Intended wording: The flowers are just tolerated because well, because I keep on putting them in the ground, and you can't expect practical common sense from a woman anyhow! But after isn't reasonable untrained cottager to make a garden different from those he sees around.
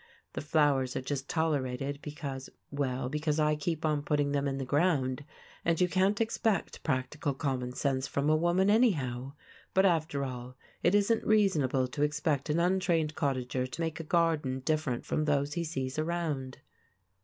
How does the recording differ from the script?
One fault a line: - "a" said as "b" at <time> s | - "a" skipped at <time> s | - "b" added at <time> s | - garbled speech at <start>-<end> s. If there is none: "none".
- "all it" added at 10.2 s
- "to expect an" added at 11.9 s